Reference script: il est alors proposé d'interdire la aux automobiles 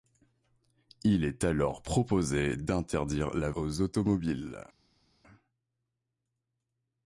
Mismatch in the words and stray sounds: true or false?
false